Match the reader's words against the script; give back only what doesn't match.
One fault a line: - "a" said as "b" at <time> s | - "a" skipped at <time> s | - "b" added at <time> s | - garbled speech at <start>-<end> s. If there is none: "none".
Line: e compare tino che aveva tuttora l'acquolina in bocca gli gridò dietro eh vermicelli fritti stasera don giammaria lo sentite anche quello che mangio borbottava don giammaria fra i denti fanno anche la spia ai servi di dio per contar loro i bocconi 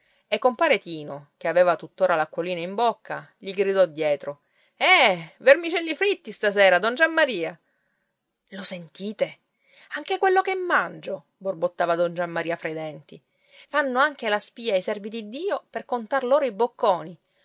none